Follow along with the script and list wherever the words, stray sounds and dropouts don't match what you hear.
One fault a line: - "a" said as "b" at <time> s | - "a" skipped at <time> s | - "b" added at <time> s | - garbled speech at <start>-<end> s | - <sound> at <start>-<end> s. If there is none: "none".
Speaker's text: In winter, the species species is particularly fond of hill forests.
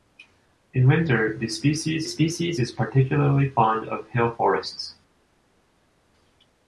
none